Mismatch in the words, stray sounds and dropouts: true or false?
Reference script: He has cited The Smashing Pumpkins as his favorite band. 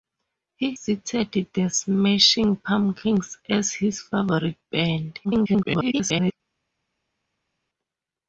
true